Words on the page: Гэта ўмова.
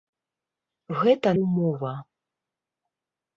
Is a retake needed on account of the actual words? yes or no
no